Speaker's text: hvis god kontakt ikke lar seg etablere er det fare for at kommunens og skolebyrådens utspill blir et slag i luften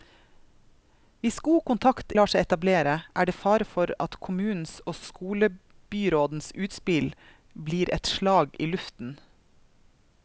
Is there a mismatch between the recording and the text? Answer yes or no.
yes